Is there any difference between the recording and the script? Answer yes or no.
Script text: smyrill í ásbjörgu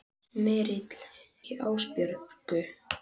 no